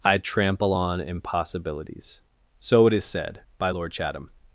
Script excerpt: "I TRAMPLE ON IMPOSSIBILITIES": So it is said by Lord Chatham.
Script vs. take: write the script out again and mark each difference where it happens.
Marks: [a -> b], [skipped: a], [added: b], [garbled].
"I TRAMPLE ON IMPOSSIBILITIES": So it is said by Lord Chatham.